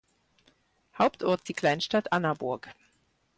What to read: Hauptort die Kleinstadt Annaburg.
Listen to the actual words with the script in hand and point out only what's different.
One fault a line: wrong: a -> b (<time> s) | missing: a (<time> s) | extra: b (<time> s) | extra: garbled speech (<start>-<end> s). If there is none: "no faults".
no faults